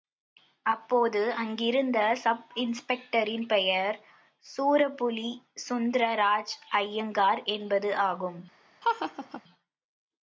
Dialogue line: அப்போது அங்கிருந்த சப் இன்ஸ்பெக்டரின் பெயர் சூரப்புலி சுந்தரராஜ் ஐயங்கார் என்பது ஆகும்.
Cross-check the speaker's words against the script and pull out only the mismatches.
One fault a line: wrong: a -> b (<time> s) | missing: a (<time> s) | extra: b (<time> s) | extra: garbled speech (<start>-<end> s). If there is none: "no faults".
no faults